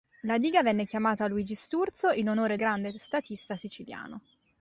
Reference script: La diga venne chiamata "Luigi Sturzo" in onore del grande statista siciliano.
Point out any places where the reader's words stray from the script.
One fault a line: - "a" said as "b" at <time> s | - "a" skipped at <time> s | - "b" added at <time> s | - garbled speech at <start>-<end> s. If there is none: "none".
- "del" skipped at 2.6 s